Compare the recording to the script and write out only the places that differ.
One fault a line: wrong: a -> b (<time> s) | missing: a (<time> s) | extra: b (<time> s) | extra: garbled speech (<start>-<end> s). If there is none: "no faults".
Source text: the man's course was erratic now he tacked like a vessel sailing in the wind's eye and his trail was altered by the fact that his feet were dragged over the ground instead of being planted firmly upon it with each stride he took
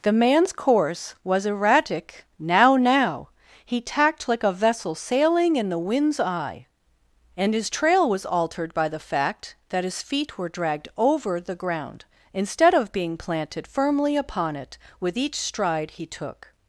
extra: now (2.8 s)